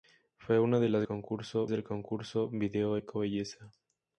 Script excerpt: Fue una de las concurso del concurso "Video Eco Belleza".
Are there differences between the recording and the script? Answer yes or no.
no